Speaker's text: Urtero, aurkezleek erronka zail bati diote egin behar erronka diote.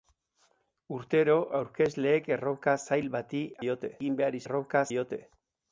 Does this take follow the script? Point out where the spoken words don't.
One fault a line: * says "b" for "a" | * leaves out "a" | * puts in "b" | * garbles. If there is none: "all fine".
all fine